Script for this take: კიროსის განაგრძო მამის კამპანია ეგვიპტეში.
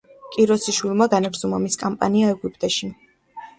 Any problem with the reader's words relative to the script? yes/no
yes